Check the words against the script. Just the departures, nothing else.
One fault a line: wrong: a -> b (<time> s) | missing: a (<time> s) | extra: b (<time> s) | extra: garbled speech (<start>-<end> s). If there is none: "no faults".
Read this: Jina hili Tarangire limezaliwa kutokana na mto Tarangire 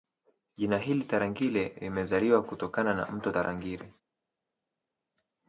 no faults